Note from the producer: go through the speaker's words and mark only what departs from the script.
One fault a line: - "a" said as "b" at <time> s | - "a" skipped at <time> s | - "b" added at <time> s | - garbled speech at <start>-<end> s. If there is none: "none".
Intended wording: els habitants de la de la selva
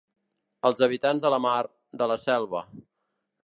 - "mar" added at 1.5 s